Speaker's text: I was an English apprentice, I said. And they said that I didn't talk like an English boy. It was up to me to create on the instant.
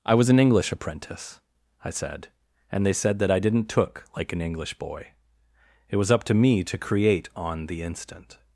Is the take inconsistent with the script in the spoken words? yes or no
yes